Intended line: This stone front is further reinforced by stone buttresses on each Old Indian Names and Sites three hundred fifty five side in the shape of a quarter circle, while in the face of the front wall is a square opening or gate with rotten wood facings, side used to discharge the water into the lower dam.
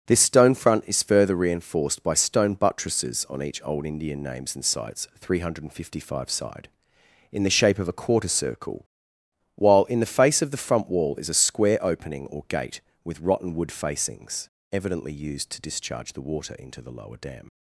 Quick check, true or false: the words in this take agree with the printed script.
false